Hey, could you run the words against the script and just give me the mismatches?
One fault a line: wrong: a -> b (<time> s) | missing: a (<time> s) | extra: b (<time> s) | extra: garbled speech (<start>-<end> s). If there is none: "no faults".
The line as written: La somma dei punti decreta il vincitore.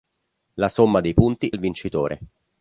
missing: decreta (1.5 s)